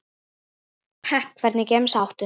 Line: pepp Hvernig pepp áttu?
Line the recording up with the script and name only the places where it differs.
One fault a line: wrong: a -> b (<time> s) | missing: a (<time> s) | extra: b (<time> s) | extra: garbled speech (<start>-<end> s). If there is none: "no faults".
wrong: pepp -> gemsa (1.7 s)